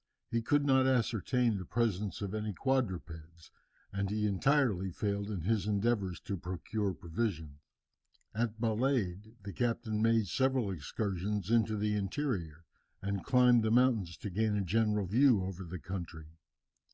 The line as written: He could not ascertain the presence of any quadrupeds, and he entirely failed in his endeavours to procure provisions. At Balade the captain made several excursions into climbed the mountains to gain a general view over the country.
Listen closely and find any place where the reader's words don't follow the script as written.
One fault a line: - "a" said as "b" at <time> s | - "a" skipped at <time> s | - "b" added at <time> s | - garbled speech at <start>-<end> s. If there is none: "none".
- "the interior and" added at 11.8 s